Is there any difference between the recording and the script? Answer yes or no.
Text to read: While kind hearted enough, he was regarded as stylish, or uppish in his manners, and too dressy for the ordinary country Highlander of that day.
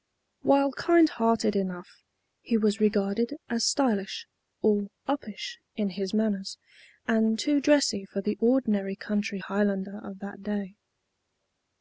no